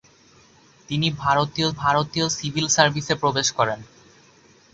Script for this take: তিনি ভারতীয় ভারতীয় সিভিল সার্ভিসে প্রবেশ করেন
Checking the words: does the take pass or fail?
pass